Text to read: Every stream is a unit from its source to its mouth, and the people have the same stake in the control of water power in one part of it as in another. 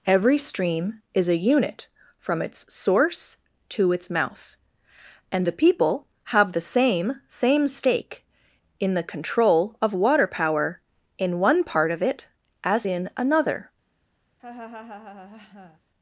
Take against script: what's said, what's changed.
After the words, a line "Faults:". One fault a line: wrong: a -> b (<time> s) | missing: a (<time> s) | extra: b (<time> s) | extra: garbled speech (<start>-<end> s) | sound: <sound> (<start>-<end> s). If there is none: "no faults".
Every stream is a unit from its source to its mouth, and the people have the same same stake in the control of water power in one part of it as in another.
Faults:
extra: same (7.3 s)
sound: laugh (14.4-15.8 s)